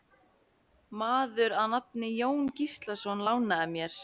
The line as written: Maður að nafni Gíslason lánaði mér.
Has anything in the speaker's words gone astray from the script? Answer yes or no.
yes